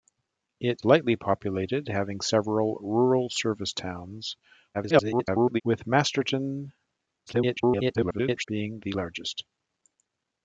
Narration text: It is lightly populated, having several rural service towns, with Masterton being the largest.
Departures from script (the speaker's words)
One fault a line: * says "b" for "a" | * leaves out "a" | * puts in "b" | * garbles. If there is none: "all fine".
* leaves out "is"
* garbles
* garbles